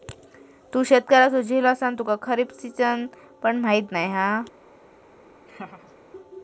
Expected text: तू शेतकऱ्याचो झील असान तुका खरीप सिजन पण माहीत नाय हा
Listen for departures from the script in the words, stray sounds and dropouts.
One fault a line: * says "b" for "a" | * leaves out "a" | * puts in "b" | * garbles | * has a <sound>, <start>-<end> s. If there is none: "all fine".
* has a laugh, 5.5-6.0 s